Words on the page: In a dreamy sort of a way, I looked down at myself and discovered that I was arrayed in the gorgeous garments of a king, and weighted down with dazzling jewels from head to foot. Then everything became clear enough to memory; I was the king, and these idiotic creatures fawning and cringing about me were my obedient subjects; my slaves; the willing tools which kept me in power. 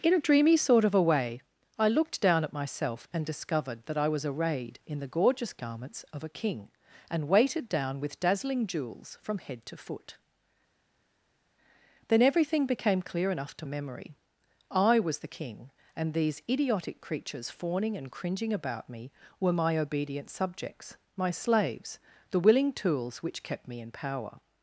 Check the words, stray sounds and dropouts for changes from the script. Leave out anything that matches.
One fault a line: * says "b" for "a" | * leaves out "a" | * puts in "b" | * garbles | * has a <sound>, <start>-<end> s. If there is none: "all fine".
all fine